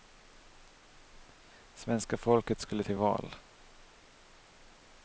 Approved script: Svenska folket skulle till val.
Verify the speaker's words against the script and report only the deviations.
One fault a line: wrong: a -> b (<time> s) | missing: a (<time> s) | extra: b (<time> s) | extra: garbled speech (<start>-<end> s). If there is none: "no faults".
no faults